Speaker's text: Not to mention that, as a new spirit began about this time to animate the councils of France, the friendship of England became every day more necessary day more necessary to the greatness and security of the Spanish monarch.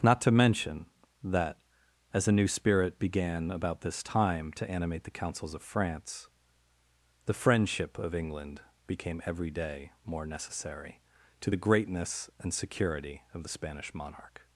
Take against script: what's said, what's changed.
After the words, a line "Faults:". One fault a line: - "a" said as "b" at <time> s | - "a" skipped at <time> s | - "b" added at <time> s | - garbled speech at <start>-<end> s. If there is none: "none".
Not to mention that, as a new spirit began about this time to animate the councils of France, the friendship of England became every day more necessary to the greatness and security of the Spanish monarch.
Faults:
- "day more necessary" skipped at 11.0 s